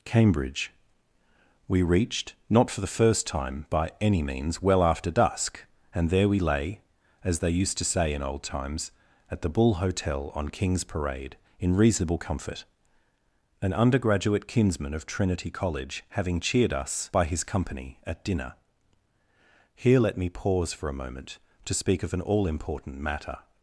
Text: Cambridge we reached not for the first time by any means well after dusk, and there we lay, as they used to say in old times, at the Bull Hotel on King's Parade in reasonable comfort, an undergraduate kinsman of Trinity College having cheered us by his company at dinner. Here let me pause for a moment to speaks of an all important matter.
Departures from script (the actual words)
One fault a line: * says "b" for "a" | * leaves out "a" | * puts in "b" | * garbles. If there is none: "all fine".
* says "speak" for "speaks"